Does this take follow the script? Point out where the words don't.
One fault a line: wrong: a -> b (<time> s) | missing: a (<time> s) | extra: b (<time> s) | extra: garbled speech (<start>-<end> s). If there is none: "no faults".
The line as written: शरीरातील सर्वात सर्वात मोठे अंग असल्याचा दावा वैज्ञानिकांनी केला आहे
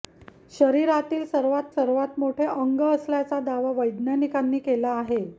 no faults